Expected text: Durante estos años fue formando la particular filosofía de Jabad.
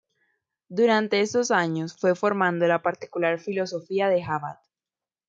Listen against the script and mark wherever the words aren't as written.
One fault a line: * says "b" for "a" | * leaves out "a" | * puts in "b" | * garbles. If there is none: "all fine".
all fine